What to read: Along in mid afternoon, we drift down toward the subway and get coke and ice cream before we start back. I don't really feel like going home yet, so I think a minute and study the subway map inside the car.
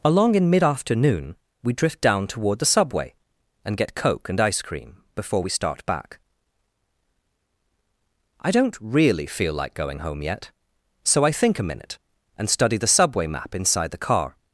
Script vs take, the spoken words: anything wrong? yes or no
no